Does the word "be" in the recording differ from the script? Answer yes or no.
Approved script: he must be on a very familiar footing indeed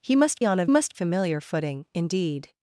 yes